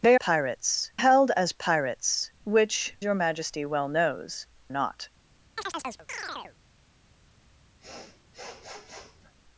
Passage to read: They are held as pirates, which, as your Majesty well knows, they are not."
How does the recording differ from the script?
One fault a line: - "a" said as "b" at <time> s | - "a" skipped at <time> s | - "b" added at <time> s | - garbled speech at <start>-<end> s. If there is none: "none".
- "are" said as "pirates" at 0.1 s
- "as" skipped at 3.0 s
- "they are" skipped at 4.5 s